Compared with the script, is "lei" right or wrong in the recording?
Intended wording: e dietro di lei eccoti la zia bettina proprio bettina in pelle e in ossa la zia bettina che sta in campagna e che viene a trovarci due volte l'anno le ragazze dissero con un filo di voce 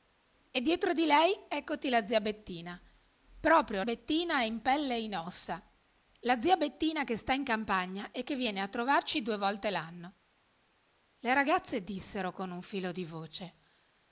right